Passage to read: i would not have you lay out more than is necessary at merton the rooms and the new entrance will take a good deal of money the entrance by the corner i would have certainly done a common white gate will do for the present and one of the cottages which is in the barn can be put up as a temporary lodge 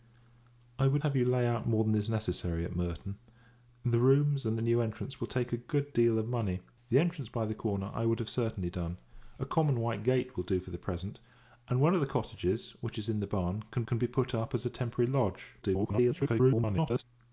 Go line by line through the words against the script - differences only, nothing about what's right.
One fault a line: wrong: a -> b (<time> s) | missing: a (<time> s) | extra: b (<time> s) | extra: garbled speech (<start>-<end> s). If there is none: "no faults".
missing: not (1.0 s)
extra: can (13.9 s)
extra: garbled speech (15.6-17.0 s)